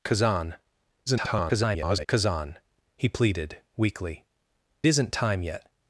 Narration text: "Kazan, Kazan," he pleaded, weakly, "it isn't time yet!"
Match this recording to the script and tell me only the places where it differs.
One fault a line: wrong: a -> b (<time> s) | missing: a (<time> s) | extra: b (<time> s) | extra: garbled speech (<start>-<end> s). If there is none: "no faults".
extra: garbled speech (1.1-2.1 s)
missing: it (4.3 s)